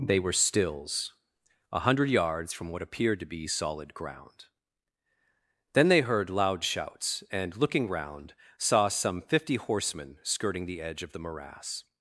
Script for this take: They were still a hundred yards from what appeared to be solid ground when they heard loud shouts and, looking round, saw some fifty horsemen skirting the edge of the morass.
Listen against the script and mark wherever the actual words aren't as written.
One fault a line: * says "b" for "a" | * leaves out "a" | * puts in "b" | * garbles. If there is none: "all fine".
* says "stills" for "still"
* says "then" for "when"